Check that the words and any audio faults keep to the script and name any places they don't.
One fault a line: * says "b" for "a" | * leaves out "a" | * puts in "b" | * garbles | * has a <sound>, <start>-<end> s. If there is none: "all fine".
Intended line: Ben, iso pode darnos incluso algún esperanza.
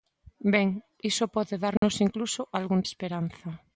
* has a dropout, 1.8-1.8 s